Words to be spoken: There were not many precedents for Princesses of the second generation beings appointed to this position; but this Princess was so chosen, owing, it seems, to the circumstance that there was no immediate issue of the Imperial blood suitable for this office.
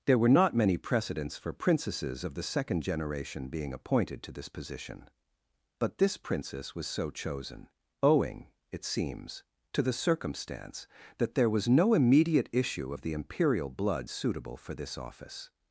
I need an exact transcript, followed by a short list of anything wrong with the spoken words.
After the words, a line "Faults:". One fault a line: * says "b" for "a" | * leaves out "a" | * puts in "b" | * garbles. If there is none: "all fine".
There were not many precedents for Princesses of the second generation being appointed to this position; but this Princess was so chosen, owing, it seems, to the circumstance that there was no immediate issue of the Imperial blood suitable for this office.
Faults:
* says "being" for "beings"